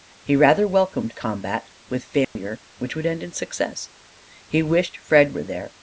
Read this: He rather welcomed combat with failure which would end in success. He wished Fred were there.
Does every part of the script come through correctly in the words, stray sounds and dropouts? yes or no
no